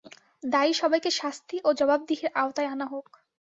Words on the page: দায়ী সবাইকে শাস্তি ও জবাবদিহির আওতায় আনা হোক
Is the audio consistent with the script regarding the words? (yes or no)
yes